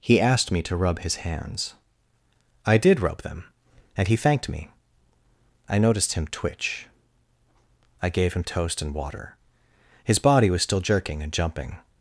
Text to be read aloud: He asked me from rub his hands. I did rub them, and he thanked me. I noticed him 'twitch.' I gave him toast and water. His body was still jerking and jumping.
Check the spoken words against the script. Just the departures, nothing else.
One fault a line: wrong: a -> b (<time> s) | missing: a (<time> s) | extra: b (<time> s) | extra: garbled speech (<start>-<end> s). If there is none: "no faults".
wrong: from -> to (0.6 s)